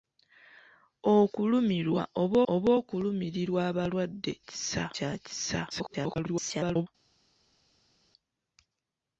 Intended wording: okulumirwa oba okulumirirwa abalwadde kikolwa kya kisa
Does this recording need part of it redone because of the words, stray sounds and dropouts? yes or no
yes